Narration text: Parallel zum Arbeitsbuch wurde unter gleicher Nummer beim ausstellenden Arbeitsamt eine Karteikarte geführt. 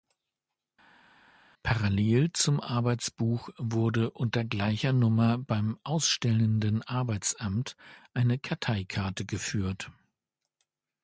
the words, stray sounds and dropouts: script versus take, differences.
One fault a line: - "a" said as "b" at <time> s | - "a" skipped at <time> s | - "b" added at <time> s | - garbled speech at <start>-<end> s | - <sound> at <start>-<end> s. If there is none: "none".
none